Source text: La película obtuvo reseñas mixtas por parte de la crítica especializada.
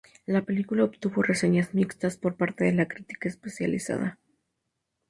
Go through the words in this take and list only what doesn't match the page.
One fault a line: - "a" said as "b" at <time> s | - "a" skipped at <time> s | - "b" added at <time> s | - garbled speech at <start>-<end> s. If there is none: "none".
none